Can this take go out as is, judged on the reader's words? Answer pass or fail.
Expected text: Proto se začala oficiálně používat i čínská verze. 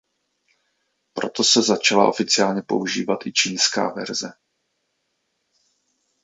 pass